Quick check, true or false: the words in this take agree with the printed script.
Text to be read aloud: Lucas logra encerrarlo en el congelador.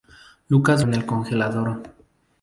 false